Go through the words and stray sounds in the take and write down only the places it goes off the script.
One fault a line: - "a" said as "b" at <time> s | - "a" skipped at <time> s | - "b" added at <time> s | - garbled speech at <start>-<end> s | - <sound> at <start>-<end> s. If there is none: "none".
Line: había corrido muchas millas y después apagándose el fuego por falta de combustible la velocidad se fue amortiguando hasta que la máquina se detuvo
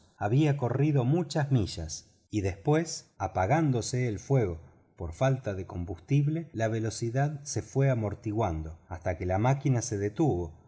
none